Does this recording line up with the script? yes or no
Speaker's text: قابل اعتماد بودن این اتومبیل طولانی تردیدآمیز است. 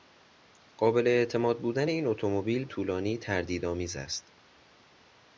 yes